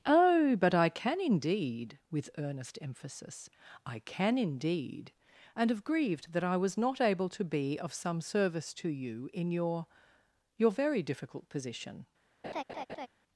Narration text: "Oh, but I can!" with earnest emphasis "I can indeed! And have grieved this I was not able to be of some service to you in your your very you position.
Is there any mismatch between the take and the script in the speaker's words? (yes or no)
yes